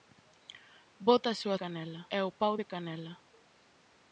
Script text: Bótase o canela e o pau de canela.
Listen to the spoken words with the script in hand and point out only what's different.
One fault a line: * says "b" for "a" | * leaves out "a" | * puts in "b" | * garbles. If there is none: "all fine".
all fine